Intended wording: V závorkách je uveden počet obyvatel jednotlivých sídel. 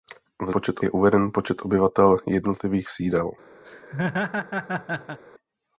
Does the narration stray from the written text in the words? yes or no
yes